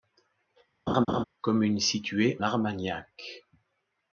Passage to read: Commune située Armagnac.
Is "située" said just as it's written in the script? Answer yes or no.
yes